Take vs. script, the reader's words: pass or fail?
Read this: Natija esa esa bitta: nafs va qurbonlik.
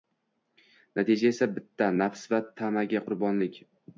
fail